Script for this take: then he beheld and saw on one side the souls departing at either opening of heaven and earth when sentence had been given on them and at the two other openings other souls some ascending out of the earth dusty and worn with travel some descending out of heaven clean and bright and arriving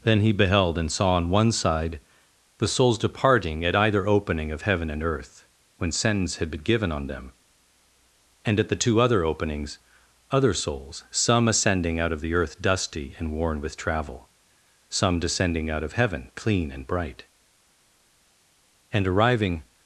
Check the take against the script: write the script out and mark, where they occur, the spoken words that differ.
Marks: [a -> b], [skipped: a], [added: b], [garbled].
then he beheld and saw on one side the souls departing at either opening of heaven and earth when sentence had been given on them and at the two other openings other souls some ascending out of the earth dusty and worn with travel some descending out of heaven clean and bright and arriving